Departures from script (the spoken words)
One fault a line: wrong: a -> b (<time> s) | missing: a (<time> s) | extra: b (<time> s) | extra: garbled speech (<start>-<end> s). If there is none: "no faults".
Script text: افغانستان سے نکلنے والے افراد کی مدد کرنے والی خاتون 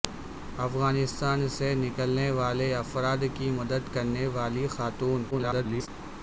extra: garbled speech (5.3-5.9 s)